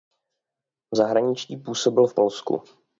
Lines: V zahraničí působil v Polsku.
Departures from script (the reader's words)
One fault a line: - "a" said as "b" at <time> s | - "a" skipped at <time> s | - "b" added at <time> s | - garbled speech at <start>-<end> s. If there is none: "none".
none